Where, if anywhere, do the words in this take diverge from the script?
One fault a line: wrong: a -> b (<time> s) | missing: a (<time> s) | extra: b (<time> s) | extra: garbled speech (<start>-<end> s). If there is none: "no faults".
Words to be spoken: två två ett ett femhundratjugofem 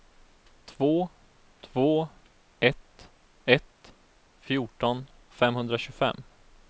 extra: fjorton (4.4 s)